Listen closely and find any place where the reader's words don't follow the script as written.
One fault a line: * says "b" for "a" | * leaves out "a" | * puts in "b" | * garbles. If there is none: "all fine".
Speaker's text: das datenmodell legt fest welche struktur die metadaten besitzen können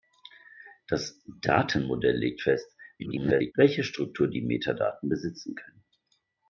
* garbles